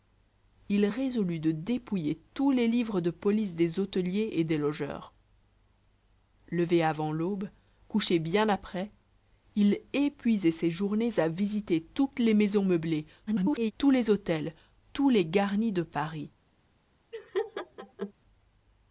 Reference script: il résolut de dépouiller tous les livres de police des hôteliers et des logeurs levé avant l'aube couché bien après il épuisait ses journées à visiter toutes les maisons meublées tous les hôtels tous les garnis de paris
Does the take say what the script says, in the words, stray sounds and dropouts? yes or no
no